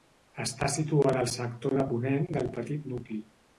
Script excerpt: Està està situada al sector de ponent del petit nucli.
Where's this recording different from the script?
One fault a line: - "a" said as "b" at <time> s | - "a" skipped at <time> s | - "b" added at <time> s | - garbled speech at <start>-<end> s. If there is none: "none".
- "està" skipped at 0.7 s